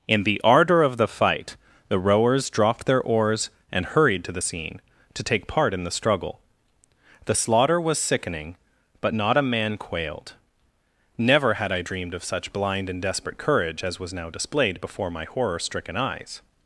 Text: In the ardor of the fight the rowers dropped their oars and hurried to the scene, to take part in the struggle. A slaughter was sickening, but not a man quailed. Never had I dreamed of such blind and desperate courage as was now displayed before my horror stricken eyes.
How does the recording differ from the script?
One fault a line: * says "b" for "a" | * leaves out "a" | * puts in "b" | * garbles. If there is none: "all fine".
* says "The" for "A"